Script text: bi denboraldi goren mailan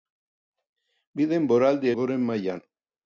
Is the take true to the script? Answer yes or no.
yes